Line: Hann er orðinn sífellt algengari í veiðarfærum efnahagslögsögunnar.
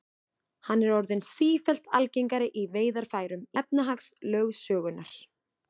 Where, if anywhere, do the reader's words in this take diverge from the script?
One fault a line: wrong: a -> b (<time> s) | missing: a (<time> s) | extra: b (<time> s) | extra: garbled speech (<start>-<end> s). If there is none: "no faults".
no faults